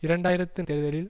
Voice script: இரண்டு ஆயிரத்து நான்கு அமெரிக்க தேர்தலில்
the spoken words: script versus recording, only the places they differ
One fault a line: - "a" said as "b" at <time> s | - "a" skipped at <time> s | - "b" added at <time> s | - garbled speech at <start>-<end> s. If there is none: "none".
- "நான்கு அமெரிக்க" skipped at 0.6 s